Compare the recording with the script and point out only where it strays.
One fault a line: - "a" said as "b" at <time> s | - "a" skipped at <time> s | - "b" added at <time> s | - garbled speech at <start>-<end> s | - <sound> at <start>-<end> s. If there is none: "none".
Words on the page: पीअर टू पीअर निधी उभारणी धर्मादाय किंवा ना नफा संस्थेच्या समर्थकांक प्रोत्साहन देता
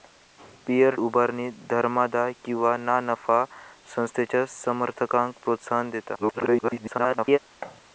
- "टू पीअर निधी" skipped at 0.9 s
- garbled speech at 6.2-7.4 s
- thud at 7.6-7.8 s